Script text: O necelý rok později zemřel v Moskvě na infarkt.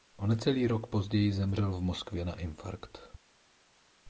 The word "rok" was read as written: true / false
true